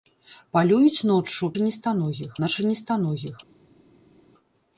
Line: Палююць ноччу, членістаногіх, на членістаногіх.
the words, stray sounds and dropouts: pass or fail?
pass